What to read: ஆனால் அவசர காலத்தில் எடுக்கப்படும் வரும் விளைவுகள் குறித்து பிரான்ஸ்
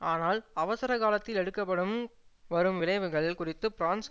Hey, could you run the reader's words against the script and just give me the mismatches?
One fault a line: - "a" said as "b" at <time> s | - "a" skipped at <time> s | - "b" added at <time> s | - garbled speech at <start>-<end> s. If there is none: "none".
none